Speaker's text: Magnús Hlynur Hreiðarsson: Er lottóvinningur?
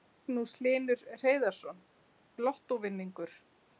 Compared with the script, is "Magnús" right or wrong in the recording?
right